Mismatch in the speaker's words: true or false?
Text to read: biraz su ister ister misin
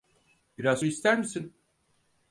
true